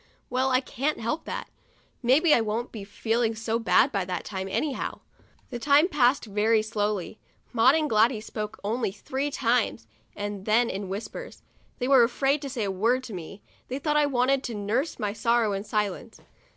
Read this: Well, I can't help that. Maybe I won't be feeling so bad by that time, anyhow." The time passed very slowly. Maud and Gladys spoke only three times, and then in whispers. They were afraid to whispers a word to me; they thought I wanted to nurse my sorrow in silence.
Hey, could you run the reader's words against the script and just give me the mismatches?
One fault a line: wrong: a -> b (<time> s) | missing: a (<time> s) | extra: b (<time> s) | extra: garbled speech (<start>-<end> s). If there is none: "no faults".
wrong: whispers -> say (12.5 s)